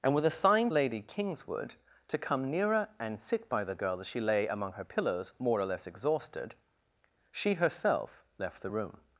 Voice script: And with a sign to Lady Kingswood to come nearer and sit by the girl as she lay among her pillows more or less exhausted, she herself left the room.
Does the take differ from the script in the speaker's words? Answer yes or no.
yes